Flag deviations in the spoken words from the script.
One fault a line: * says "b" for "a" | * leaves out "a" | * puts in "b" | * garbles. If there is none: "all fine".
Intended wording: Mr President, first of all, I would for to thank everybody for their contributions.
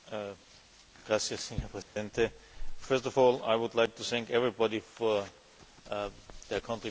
* says "like" for "for"